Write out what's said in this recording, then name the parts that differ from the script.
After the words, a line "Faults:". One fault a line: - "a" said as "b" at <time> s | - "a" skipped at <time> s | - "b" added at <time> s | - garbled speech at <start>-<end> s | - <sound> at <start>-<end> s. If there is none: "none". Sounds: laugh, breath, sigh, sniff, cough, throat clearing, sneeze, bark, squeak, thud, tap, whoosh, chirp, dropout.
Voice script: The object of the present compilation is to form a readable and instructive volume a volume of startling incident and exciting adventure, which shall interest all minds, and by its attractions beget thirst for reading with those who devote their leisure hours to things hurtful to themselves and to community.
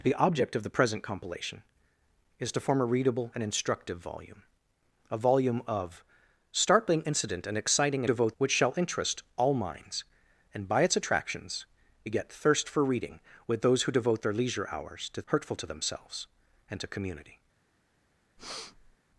The object of the present compilation is to form a readable and instructive volume a volume of startling incident and exciting devote, which shall interest all minds, and by its attractions beget thirst for reading with those who devote their leisure hours to hurtful to themselves and to community.
Faults:
- "adventure" said as "devote" at 8.0 s
- "things" skipped at 15.2 s
- breath at 18.4-19.0 s